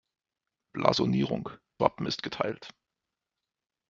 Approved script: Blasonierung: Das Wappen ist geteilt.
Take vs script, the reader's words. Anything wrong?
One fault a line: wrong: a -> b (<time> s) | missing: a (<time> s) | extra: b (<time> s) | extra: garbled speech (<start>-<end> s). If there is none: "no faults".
missing: Das (1.5 s)